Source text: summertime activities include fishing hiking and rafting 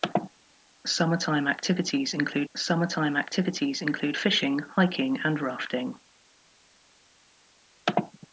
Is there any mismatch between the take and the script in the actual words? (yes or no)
yes